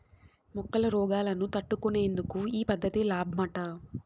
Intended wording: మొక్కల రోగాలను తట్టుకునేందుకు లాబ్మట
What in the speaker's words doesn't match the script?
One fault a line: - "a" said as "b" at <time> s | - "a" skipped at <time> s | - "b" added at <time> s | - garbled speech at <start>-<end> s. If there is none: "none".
- "ఈ పద్ధతి" added at 2.5 s